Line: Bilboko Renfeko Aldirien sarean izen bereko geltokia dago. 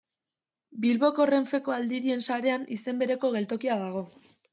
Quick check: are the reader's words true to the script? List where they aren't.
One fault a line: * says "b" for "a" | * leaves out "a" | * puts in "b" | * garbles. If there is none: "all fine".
all fine